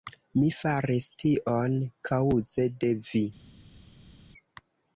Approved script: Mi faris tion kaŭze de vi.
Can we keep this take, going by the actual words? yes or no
yes